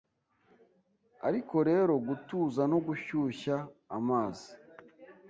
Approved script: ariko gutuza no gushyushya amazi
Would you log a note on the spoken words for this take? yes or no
yes